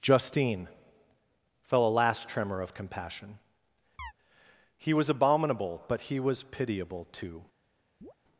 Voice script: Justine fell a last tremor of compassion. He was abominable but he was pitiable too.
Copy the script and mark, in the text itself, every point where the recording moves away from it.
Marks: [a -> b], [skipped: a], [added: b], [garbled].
Justine fell a last tremor of compassion. He was abominable but he was pitiable too.